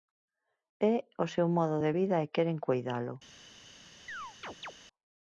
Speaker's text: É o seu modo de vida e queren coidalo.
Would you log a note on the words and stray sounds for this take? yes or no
yes